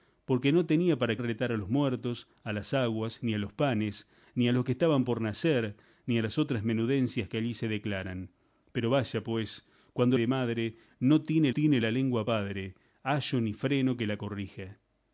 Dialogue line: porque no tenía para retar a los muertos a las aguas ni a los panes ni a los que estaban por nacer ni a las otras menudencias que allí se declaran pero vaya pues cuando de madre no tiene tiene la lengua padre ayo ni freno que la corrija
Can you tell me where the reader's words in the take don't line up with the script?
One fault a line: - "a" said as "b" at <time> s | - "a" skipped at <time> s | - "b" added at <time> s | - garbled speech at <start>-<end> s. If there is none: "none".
none